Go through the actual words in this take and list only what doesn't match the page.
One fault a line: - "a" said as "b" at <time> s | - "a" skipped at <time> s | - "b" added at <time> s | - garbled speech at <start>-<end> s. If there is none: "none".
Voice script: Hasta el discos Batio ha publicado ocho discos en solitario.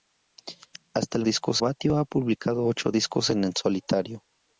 none